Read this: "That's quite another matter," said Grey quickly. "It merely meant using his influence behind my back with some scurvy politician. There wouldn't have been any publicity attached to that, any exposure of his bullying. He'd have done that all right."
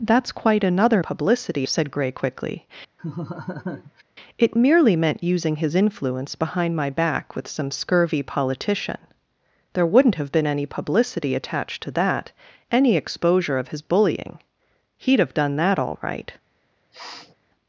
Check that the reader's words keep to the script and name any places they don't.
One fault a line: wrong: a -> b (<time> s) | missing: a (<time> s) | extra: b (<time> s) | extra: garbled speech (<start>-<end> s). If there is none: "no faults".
wrong: matter -> publicity (1.0 s)